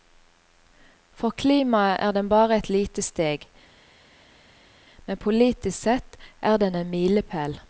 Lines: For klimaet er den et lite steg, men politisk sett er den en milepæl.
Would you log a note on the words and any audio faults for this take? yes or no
yes